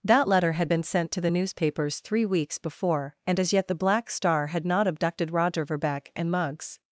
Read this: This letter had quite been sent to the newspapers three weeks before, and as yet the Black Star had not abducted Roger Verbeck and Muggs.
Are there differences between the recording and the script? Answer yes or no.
yes